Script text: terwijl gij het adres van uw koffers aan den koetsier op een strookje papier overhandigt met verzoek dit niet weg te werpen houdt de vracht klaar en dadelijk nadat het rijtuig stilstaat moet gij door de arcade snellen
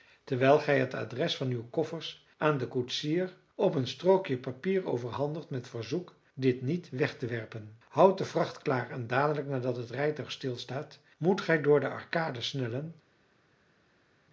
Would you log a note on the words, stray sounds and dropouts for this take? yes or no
no